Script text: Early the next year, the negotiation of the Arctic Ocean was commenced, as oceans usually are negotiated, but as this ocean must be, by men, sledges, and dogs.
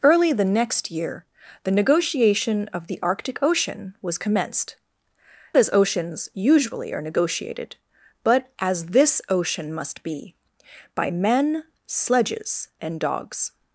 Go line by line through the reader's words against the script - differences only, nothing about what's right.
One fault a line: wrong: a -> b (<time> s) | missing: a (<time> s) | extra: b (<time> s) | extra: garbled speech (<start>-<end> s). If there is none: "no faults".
no faults